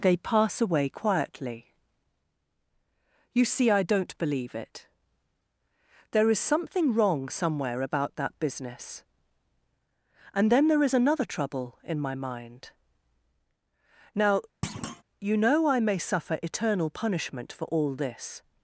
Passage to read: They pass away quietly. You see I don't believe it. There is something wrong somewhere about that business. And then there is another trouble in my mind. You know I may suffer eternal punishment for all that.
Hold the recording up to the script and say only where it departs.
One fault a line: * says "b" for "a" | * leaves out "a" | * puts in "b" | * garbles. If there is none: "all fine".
* puts in "Now"
* says "this" for "that"